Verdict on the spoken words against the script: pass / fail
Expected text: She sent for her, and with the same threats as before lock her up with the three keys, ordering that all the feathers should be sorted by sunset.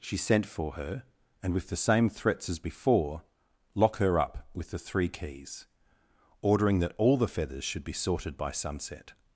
pass